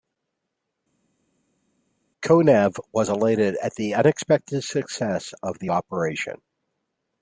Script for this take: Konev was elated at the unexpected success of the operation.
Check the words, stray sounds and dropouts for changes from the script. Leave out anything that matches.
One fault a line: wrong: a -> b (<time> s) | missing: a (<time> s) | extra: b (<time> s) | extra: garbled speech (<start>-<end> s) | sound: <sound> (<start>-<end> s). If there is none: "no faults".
no faults